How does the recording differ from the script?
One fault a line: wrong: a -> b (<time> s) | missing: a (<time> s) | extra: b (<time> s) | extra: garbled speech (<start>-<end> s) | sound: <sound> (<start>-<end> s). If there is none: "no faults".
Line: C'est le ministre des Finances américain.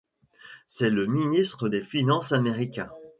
no faults